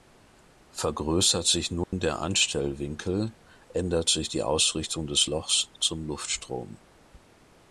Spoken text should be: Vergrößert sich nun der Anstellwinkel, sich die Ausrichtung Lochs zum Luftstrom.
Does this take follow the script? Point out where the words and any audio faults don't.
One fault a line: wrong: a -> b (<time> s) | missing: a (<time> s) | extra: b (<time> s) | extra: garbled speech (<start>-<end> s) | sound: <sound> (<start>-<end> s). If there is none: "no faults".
sound: dropout (1.8-1.9 s)
extra: ändert (3.7 s)
extra: des (5.1 s)